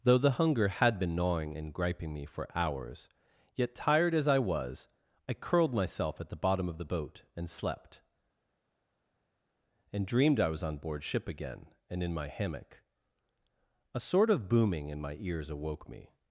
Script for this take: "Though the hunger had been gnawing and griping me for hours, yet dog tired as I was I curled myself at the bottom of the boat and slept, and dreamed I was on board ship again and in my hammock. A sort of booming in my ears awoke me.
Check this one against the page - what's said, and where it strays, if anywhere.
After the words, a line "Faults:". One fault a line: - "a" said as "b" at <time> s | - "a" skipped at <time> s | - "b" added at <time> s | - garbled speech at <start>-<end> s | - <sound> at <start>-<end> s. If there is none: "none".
"Though the hunger had been gnawing and griping me for hours, yet tired as I was I curled myself at the bottom of the boat and slept, and dreamed I was on board ship again and in my hammock. A sort of booming in my ears awoke me.
Faults:
- "dog" skipped at 3.8 s